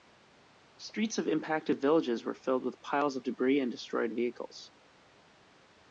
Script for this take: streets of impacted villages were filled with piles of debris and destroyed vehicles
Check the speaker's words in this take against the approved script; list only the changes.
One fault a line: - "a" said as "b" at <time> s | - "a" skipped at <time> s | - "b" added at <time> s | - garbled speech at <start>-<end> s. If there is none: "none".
none